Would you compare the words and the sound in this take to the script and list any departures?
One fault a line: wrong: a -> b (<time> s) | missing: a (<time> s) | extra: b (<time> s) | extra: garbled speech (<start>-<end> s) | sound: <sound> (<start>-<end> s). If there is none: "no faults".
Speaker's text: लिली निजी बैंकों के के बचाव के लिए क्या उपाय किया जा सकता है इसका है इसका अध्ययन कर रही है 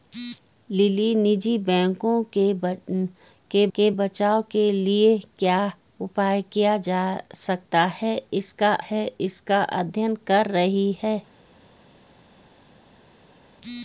no faults